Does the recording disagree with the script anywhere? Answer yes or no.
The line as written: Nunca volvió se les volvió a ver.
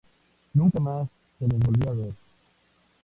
yes